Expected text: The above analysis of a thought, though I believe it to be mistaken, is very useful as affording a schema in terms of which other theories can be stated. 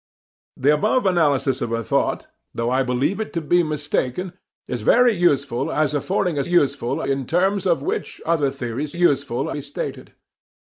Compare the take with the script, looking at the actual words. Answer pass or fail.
fail